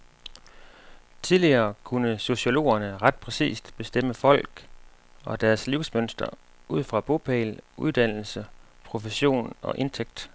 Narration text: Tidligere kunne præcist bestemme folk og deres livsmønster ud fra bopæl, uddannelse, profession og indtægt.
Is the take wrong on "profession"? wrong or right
right